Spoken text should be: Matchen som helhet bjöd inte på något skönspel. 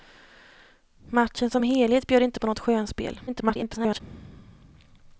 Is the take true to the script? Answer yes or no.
no